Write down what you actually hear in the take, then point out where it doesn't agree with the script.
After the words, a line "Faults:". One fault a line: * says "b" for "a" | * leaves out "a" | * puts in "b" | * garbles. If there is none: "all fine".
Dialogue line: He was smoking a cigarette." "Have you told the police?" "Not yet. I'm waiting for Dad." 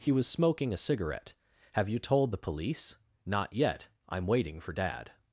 He was smoking a cigarette." "Have you told the police?" "Not yet. I'm waiting for Dad."
Faults:
all fine